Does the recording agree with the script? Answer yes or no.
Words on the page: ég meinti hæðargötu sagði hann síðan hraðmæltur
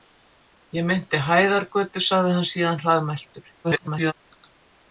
no